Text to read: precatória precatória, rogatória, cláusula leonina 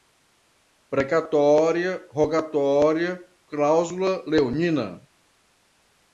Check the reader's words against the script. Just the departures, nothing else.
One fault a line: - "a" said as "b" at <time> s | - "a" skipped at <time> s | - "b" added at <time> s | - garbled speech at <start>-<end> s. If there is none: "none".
- "precatória" skipped at 2.0 s